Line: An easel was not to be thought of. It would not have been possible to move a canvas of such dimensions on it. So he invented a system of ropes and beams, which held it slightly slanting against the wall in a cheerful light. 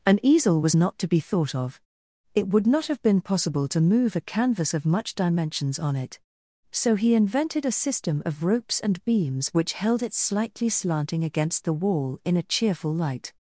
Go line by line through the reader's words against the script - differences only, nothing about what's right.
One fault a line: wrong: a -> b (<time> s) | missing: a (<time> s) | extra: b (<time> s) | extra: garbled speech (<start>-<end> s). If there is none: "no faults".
wrong: such -> much (4.8 s)